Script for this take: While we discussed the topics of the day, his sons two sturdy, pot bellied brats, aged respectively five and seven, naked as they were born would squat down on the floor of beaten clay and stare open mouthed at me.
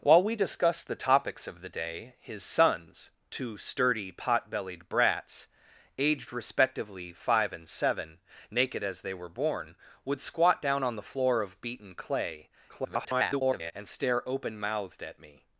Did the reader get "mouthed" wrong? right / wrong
right